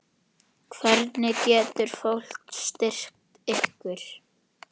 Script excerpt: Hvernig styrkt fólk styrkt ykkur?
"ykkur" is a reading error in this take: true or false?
false